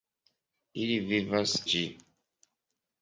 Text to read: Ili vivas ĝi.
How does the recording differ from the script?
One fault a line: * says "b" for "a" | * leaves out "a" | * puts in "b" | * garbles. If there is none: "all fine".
all fine